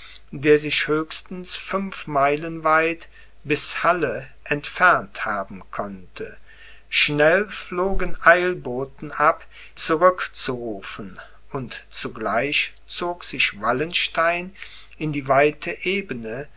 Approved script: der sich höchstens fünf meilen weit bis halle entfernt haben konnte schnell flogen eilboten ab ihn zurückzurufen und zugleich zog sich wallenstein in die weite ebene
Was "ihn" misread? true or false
true